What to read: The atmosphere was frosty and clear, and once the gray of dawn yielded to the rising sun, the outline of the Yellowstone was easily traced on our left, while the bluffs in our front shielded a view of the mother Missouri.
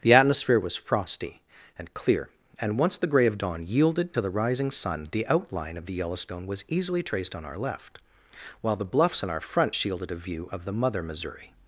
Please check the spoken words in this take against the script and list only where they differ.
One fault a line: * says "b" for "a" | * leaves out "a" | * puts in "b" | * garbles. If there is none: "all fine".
all fine